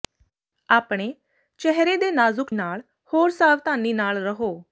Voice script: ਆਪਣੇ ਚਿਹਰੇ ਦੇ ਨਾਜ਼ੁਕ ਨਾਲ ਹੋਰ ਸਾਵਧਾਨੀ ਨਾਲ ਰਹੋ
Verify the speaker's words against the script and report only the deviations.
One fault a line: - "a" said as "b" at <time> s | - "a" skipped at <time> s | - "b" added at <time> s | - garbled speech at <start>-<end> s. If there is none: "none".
none